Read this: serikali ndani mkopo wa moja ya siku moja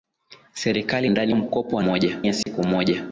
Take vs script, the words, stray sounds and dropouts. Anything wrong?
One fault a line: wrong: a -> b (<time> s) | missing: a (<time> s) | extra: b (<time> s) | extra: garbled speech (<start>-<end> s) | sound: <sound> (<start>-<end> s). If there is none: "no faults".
sound: dropout (2.4-2.5 s)